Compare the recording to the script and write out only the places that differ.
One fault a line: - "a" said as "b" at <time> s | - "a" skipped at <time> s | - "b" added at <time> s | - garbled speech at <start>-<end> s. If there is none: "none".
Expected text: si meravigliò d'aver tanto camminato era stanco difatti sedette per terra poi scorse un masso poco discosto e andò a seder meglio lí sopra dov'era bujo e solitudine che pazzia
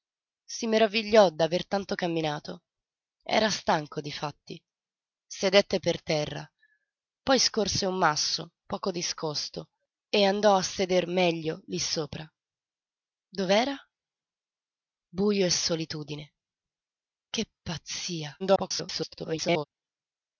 - garbled speech at 18.4-19.6 s